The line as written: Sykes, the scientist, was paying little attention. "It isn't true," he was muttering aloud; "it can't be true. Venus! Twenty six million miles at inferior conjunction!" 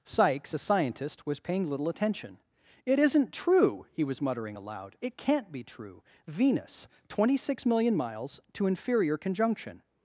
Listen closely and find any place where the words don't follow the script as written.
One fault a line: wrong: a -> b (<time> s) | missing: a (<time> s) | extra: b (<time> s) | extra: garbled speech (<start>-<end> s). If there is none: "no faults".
wrong: the -> a (0.5 s)
wrong: at -> to (8.5 s)